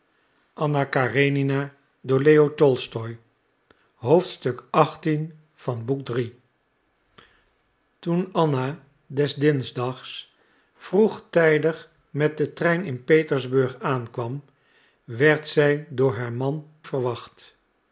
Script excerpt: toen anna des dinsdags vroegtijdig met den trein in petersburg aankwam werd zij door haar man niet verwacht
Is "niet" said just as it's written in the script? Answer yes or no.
no